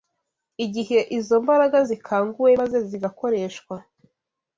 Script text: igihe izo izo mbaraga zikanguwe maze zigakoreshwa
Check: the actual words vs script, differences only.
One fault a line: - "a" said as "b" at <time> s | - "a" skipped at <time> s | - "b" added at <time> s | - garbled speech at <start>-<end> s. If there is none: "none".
- "izo" skipped at 1.4 s